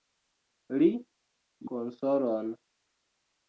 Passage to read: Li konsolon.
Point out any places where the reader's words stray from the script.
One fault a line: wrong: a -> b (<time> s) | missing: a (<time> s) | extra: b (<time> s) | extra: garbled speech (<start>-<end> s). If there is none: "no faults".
no faults